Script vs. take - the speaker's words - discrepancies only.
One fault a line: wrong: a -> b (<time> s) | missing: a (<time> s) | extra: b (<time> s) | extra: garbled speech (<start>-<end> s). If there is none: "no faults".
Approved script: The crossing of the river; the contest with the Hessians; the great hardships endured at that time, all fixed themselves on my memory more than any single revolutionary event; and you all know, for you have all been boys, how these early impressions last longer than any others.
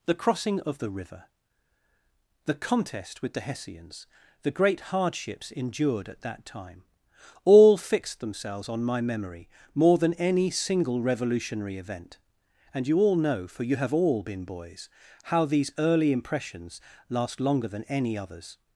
no faults